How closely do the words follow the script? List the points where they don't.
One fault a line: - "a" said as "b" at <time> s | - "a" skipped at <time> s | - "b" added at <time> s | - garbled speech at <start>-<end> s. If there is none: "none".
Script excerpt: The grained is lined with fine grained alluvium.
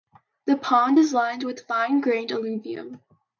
- "grained" said as "pond" at 0.6 s